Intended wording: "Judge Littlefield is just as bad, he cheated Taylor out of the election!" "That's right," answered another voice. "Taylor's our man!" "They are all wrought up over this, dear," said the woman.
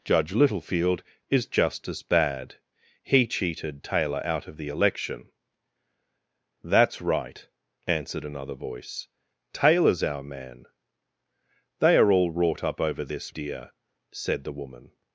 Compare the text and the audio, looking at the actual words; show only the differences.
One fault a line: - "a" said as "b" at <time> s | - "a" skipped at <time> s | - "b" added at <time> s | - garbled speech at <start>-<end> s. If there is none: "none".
none